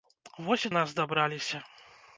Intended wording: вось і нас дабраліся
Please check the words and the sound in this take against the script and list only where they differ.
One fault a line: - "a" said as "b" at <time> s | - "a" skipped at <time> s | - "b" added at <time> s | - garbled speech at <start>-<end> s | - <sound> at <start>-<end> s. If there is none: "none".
none